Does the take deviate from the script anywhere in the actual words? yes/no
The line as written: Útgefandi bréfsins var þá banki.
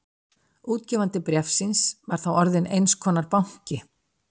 yes